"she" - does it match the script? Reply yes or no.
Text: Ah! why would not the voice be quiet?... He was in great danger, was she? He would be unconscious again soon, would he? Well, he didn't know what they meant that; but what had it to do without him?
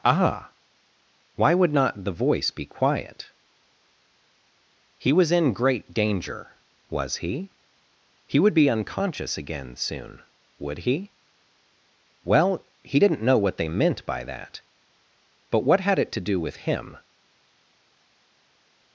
no